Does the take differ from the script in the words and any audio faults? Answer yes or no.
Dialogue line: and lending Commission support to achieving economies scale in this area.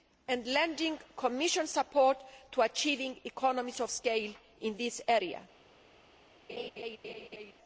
yes